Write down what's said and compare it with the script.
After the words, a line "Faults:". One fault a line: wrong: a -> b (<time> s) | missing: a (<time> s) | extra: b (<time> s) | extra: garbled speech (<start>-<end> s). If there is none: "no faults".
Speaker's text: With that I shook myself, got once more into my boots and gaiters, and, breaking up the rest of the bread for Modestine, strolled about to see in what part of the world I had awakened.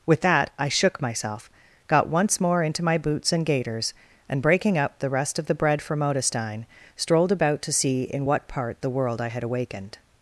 With that I shook myself, got once more into my boots and gaiters, and, breaking up the rest of the bread for Modestine, strolled about to see in what part the world I had awakened.
Faults:
missing: of (8.8 s)